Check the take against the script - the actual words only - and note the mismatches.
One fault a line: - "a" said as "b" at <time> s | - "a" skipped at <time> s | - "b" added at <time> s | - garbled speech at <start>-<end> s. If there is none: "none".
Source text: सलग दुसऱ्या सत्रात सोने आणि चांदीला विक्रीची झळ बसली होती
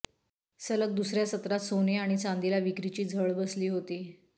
none